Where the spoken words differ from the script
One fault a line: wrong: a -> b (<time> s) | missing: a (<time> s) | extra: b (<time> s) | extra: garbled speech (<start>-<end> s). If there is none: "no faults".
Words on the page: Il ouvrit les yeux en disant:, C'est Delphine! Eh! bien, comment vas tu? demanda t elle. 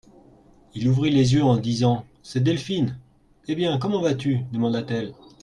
no faults